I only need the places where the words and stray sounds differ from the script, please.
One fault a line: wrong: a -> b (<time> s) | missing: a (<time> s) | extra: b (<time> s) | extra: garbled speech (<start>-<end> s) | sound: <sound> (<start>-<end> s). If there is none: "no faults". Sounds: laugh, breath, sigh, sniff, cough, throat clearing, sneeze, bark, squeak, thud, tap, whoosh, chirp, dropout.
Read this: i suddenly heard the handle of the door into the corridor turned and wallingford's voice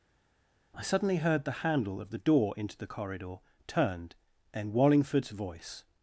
no faults